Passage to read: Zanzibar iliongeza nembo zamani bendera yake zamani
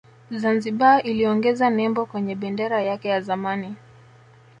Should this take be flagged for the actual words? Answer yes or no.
yes